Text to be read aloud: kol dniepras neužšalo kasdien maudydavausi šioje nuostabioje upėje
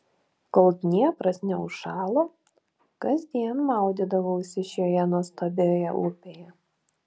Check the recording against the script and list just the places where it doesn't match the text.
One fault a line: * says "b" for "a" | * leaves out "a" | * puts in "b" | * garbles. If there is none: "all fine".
all fine